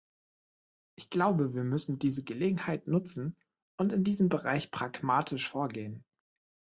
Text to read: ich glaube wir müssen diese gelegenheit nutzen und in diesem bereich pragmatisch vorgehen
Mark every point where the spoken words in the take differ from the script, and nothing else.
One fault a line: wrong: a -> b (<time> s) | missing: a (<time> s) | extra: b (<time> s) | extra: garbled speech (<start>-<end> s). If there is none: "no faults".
no faults